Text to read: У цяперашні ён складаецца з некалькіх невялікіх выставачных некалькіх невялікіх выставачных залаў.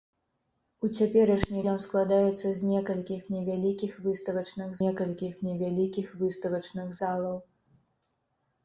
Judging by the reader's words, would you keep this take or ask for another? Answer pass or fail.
pass